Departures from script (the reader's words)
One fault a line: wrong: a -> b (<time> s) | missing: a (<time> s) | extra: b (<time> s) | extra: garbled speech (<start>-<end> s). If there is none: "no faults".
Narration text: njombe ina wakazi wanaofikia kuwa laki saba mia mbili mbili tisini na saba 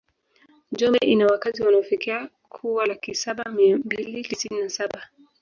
missing: mbili (4.2 s)